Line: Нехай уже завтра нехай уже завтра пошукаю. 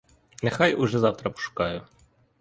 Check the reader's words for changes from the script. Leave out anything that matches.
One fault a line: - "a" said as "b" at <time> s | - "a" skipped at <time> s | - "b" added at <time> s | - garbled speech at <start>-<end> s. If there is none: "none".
- "нехай уже завтра" skipped at 1.3 s